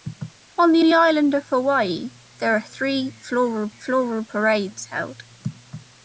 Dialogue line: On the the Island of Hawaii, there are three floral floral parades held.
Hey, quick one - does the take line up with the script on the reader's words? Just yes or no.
yes